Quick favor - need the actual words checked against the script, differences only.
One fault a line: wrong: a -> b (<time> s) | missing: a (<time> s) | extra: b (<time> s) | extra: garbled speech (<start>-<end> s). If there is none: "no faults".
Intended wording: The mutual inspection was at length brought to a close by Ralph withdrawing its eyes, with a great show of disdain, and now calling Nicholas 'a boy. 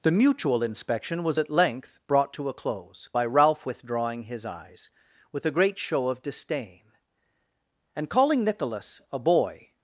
wrong: its -> his (4.2 s)
missing: now (8.1 s)